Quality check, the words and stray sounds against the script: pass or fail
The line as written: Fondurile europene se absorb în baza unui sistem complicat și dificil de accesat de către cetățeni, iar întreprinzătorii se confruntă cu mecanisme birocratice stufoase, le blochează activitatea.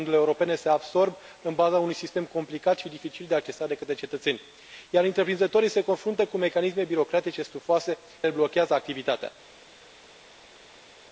pass